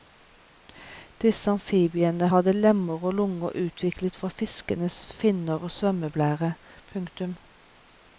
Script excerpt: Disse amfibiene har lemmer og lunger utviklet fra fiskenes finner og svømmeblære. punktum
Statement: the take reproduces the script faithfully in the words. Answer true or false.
false